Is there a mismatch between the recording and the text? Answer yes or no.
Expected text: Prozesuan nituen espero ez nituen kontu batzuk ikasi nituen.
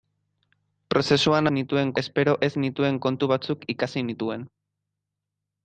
no